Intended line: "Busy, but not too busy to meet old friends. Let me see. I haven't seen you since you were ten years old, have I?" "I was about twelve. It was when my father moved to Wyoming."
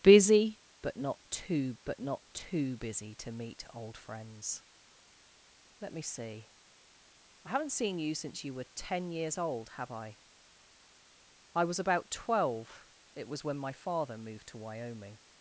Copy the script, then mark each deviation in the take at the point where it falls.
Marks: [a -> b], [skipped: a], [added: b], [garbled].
"Busy, but not too [added: but not too] busy to meet old friends. Let me see. I haven't seen you since you were ten years old, have I?" "I was about twelve. It was when my father moved to Wyoming."